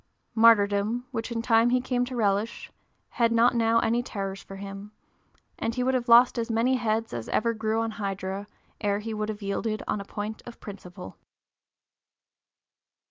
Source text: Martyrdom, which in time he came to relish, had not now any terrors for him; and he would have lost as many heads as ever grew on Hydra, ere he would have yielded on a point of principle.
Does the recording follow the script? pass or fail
pass